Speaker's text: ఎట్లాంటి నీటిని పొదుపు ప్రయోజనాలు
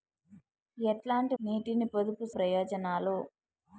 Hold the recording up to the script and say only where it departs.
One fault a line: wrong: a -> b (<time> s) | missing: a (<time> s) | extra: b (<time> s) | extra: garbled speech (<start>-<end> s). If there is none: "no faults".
no faults